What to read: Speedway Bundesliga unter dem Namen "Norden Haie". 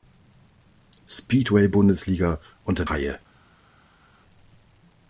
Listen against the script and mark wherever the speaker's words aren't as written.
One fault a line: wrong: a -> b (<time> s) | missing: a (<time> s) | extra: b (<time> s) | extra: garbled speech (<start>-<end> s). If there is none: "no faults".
missing: dem Namen Norden (2.9 s)